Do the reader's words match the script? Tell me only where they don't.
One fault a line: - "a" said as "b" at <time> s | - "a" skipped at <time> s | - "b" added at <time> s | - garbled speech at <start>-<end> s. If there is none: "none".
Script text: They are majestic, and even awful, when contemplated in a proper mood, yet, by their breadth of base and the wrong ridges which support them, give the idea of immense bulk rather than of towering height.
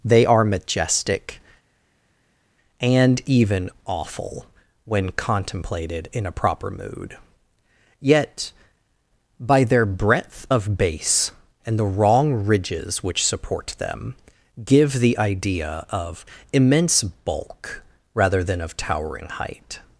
none